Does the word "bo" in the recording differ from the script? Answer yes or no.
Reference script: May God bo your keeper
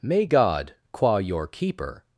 yes